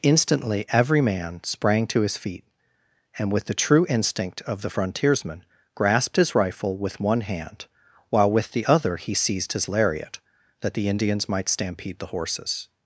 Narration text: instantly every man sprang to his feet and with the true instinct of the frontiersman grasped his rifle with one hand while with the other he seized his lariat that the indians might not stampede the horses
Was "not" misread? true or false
true